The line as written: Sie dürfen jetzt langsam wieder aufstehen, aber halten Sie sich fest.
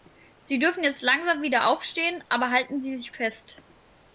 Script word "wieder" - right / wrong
right